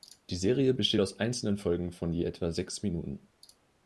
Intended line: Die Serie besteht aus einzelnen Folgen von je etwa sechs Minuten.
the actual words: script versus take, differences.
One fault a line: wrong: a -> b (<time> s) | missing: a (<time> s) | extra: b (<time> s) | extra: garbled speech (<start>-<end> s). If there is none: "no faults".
no faults